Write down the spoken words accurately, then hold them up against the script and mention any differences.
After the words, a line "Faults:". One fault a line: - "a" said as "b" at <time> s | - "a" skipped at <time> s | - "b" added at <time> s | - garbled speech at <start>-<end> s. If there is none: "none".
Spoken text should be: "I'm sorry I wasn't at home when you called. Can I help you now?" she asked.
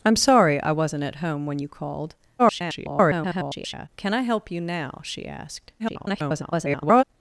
"I'm sorry I wasn't at home when you called. [garbled] Can I help you now?" she asked. [garbled]
Faults:
- garbled speech at 2.4-3.9 s
- garbled speech at 5.8-7.0 s